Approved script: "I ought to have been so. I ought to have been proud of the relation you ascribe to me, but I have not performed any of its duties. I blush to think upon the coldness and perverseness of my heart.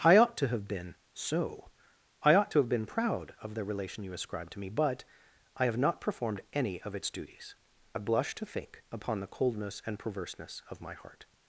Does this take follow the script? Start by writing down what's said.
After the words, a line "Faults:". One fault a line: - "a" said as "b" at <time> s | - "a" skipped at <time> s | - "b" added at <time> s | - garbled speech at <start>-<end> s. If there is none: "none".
"I ought to have been so. I ought to have been proud of the relation you ascribe to me, but I have not performed any of its duties. I blush to think upon the coldness and perverseness of my heart.
Faults:
none